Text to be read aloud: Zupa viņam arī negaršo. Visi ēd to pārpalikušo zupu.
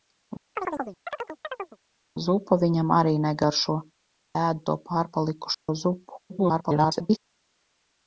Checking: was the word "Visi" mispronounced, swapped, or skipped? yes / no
yes